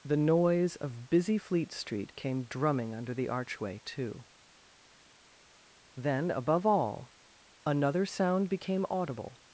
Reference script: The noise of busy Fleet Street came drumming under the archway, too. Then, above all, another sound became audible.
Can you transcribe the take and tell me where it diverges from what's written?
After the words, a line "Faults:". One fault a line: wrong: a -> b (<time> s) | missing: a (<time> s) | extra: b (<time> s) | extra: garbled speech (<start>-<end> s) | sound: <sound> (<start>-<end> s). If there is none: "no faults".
The noise of busy Fleet Street came drumming under the archway, too. Then, above all, another sound became audible.
Faults:
no faults